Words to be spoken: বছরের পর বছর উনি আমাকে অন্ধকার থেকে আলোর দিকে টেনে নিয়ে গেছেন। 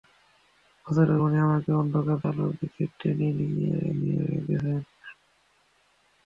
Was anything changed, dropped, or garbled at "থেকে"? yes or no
yes